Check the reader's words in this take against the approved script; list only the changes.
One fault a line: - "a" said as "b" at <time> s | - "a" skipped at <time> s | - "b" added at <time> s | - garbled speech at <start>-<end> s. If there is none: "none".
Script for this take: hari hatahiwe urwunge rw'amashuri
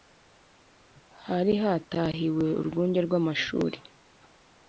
none